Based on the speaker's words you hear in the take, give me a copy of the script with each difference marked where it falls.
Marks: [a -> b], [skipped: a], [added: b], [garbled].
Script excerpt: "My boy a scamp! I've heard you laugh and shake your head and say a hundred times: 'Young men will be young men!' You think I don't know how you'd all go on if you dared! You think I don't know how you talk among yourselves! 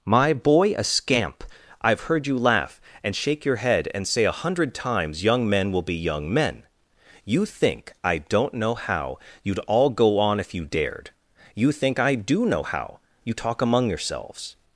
"My boy a scamp! I've heard you laugh and shake your head and say a hundred times: 'Young men will be young men!' You think I don't know how you'd all go on if you dared! You think I [don't -> do] know how you talk among yourselves!